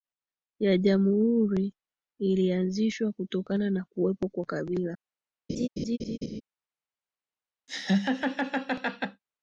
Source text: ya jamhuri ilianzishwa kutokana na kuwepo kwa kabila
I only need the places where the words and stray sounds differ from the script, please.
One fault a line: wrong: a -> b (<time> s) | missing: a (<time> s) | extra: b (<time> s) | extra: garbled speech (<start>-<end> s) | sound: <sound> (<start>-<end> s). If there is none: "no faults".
sound: laugh (5.5-6.4 s)
sound: laugh (7.7-9.2 s)